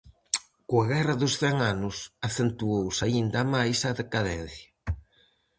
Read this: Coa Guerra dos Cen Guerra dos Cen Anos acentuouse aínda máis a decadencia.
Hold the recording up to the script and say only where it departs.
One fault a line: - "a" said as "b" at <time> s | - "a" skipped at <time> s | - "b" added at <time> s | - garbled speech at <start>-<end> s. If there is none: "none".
- "Guerra dos Cen" skipped at 1.6 s